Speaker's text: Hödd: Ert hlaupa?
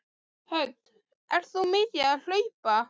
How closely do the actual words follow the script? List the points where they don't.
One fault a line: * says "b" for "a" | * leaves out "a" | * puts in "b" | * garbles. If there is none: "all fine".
* puts in "þú mikið að"